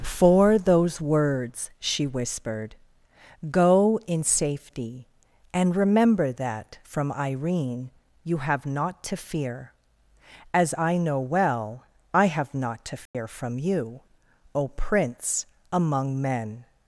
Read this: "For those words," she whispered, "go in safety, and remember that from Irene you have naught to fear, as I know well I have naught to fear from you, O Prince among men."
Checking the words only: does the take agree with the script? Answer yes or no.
yes